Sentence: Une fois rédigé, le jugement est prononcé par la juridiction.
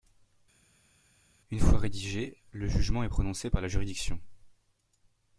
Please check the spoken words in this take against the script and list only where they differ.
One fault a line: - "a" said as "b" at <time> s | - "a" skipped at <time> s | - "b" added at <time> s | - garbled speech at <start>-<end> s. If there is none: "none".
none